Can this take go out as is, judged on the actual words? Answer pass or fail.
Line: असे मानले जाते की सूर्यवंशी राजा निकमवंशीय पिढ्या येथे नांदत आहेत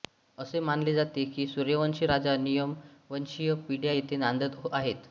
pass